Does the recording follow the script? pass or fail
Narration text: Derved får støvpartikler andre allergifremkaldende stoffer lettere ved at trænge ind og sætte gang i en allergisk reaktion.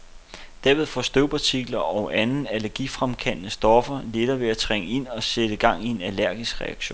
fail